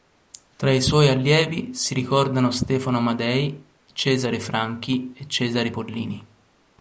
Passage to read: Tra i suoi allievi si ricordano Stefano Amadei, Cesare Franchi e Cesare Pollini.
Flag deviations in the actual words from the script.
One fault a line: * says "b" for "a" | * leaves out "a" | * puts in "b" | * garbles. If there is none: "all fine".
all fine